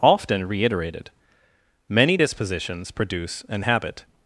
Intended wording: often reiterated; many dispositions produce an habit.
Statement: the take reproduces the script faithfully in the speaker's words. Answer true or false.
true